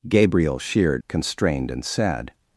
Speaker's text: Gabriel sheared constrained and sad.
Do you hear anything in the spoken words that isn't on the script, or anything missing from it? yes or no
no